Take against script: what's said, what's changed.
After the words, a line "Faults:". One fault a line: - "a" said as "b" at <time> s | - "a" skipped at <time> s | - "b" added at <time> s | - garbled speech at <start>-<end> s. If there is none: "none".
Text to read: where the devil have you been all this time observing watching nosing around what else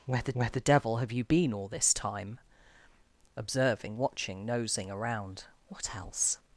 where the where the devil have you been all this time observing watching nosing around what else
Faults:
- "where the" added at 0.3 s